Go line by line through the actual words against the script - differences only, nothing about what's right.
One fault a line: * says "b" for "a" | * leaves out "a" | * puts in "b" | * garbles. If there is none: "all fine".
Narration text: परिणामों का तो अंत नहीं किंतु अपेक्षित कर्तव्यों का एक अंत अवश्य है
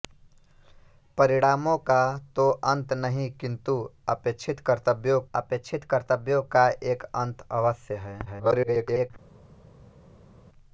* puts in "अपेक्षित कर्तव्यों"
* garbles